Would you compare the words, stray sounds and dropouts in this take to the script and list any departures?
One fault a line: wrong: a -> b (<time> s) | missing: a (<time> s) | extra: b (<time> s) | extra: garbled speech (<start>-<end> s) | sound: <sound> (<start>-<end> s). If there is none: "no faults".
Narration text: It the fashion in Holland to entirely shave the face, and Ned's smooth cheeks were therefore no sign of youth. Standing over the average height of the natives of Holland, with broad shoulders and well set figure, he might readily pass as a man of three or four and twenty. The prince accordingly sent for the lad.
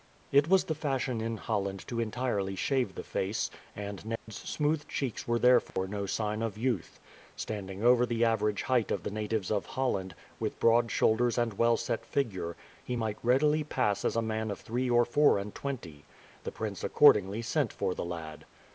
extra: was (0.5 s)
sound: dropout (4.2-4.3 s)
sound: dropout (5.7-5.8 s)